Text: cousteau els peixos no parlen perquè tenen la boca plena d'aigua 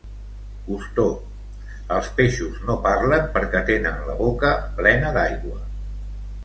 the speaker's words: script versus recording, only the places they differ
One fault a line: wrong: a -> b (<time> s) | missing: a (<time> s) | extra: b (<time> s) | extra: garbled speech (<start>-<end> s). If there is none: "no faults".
no faults